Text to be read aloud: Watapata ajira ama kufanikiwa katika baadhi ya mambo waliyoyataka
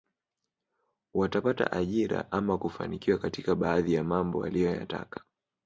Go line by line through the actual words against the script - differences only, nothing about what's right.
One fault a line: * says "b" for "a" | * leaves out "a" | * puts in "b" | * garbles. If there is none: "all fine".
all fine